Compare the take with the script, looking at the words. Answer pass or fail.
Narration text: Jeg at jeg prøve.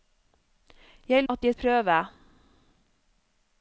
pass